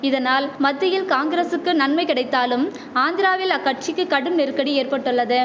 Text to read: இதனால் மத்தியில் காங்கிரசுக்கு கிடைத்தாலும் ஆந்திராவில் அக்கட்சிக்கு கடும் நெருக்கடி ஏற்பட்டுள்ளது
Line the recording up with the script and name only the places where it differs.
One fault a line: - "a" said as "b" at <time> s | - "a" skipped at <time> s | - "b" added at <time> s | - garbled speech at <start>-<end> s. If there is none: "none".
- "நன்மை" added at 1.7 s